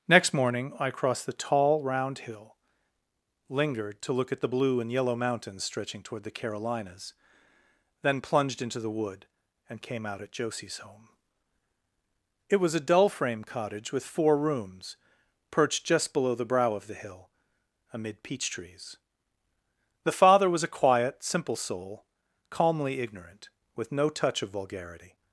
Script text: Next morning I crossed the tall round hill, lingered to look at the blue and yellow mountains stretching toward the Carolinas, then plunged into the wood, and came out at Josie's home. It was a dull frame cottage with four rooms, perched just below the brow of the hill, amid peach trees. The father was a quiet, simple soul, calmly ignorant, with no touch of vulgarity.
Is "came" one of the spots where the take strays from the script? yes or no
no